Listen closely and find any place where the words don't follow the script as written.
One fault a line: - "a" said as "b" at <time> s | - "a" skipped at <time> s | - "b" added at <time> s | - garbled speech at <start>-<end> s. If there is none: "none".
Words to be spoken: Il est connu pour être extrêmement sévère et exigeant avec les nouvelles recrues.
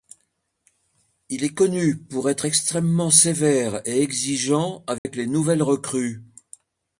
none